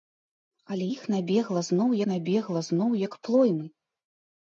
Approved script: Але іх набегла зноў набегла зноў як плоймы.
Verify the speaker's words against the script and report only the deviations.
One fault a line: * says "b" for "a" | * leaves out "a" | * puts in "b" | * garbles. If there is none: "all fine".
all fine